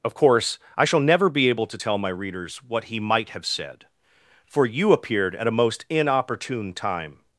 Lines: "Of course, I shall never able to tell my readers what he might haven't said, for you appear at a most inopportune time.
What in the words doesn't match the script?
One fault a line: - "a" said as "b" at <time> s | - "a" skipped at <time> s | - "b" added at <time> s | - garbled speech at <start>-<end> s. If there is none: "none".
- "be" added at 1.3 s
- "haven't" said as "have" at 3.3 s
- "appear" said as "appeared" at 4.9 s